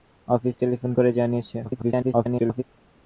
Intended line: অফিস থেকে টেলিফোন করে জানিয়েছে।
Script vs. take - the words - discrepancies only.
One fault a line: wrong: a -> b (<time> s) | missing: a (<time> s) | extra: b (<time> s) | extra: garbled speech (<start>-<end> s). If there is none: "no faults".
missing: থেকে (0.6 s)
extra: garbled speech (1.6-2.6 s)